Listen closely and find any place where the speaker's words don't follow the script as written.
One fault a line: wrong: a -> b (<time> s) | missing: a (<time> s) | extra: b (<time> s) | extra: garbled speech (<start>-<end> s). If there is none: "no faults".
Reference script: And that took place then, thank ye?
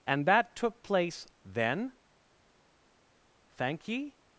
no faults